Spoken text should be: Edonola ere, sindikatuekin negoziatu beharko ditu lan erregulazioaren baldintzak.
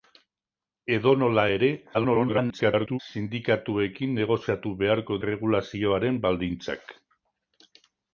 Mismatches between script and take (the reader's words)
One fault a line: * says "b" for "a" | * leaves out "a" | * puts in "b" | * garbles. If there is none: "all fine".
* garbles
* leaves out "ditu lan"